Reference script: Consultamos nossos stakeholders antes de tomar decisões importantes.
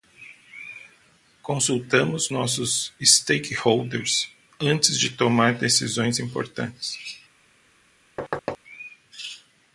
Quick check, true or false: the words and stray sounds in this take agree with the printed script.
false